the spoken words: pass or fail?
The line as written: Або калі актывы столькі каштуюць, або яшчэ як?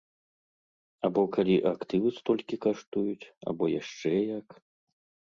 pass